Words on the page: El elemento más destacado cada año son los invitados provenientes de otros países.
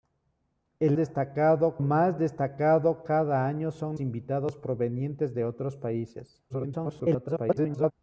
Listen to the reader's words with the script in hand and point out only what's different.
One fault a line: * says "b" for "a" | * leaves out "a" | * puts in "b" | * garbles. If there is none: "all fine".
* says "destacado" for "elemento"
* leaves out "los"
* garbles